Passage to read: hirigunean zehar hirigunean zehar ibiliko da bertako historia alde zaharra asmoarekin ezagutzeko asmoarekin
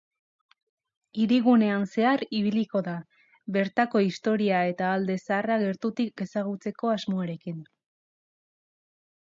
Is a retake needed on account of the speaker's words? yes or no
yes